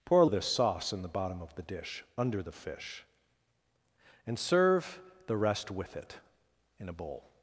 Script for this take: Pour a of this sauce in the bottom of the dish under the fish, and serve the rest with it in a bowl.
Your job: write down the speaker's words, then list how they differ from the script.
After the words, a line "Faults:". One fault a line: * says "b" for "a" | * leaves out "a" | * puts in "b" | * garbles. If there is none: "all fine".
Pour a of this sauce in the bottom of the dish under the fish, and serve the rest with it in a bowl.
Faults:
all fine